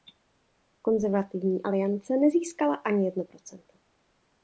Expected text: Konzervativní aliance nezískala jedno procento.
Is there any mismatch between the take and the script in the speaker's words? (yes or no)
yes